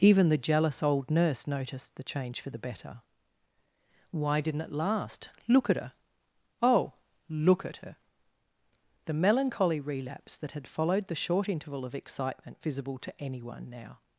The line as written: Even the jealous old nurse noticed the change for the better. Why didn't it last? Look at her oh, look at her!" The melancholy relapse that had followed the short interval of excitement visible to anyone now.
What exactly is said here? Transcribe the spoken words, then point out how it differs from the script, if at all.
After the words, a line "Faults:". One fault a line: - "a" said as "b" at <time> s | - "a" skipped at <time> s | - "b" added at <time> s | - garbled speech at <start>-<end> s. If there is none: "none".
Even the jealous old nurse noticed the change for the better. Why didn't it last? Look at her oh, look at her!" The melancholy relapse that had followed the short interval of excitement visible to anyone now.
Faults:
none